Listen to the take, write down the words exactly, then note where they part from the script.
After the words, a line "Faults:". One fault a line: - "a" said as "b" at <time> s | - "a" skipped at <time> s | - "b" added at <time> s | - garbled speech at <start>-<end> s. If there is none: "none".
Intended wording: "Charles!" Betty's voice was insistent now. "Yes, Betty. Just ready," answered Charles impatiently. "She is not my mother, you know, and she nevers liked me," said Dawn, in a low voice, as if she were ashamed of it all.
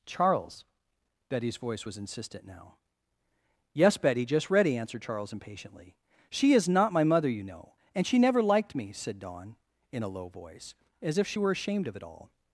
"Charles!" Betty's voice was insistent now. "Yes, Betty. Just ready," answered Charles impatiently. "She is not my mother, you know, and she never liked me," said Dawn, in a low voice, as if she were ashamed of it all.
Faults:
- "nevers" said as "never" at 8.2 s